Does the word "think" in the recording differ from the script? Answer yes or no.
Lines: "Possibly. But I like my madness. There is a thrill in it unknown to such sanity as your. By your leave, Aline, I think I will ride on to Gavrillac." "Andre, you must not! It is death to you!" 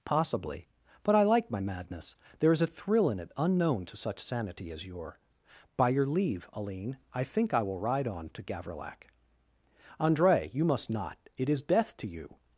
no